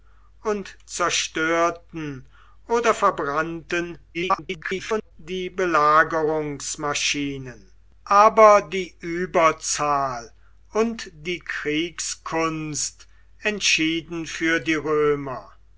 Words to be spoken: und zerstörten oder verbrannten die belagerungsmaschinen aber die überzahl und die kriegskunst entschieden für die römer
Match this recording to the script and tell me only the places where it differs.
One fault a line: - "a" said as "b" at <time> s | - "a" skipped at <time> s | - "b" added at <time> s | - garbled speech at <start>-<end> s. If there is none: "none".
- garbled speech at 4.1-5.1 s